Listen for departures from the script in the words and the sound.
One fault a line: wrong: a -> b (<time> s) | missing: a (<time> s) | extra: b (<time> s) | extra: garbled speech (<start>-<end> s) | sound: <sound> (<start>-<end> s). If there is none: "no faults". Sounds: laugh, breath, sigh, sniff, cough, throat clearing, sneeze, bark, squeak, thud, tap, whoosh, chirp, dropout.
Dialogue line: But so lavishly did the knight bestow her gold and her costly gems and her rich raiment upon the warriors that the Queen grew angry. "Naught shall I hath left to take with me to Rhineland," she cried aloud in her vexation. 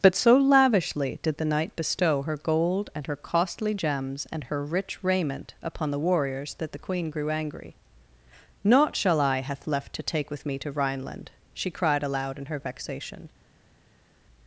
no faults